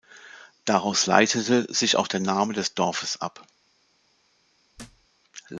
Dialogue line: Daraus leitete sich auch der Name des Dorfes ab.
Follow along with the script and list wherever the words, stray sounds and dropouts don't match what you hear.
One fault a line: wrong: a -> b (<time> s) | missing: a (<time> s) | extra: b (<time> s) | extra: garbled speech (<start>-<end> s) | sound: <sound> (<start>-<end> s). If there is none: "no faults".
sound: thud (4.8-5.1 s)